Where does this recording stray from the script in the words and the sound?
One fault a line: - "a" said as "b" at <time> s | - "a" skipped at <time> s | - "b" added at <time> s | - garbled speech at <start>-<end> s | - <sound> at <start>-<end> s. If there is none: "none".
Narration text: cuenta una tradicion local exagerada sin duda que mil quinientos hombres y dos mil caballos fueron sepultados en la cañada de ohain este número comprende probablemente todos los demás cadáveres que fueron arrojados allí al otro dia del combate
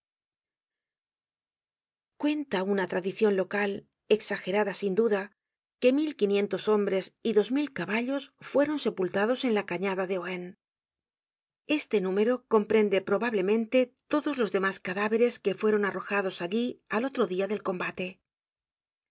none